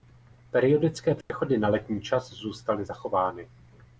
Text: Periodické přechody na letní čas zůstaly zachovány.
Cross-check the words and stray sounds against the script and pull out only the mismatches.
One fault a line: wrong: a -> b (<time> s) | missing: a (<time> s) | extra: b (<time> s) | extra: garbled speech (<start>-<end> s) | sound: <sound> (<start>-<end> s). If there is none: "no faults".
sound: dropout (1.2-1.3 s)